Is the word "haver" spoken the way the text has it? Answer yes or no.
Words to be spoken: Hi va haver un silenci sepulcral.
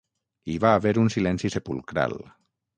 yes